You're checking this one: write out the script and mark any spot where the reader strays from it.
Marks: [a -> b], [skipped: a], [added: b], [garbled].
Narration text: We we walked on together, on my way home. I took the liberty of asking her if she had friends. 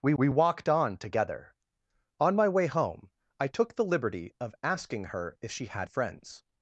We we walked on together, on my way home. I took the liberty of asking her if she had friends.